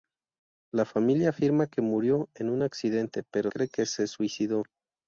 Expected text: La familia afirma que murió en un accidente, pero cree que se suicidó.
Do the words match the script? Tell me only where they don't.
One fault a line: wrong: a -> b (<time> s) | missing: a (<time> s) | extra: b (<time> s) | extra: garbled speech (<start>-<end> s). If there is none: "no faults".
no faults